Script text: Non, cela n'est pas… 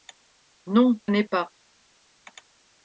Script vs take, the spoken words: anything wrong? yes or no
yes